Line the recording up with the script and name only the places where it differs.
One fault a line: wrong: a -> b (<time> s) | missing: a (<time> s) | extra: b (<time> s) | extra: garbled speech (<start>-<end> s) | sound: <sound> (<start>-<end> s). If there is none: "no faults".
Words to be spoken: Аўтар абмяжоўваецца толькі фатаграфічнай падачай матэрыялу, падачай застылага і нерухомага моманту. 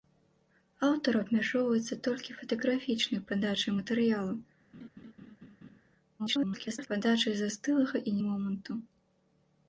sound: laugh (4.7-5.8 s)
extra: garbled speech (6.2-6.9 s)
missing: нерухомага (8.2 s)